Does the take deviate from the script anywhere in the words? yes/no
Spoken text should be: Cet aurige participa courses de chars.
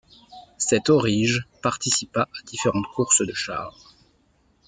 yes